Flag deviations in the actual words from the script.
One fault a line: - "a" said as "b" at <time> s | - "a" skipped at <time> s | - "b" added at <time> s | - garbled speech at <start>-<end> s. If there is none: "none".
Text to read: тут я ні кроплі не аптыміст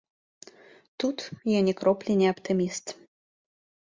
none